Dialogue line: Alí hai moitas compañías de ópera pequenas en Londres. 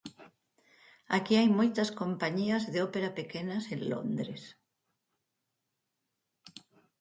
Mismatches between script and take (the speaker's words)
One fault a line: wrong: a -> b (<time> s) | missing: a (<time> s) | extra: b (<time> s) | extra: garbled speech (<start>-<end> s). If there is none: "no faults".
wrong: Alí -> Aquí (1.2 s)